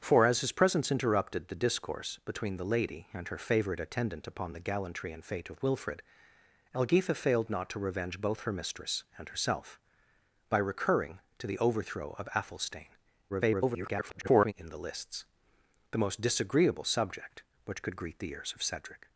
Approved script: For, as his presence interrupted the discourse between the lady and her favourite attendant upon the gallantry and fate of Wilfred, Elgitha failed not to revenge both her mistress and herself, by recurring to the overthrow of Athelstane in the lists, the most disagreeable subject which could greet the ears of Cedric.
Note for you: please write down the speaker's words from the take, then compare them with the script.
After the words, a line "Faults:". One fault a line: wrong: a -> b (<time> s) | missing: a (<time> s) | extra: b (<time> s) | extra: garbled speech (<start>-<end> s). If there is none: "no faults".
For, as his presence interrupted the discourse between the lady and her favourite attendant upon the gallantry and fate of Wilfred, Elgitha failed not to revenge both her mistress and herself, by recurring to the overthrow of Athelstane [garbled] in the lists, the most disagreeable subject which could greet the ears of Cedric.
Faults:
extra: garbled speech (13.3-14.5 s)